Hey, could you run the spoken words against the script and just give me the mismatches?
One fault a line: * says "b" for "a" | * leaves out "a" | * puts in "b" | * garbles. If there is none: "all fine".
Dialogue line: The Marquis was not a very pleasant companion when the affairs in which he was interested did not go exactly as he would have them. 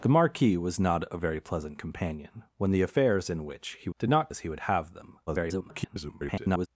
* leaves out "was interested"
* leaves out "go exactly"
* garbles